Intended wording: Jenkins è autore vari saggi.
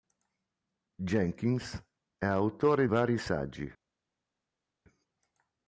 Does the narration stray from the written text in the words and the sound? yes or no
no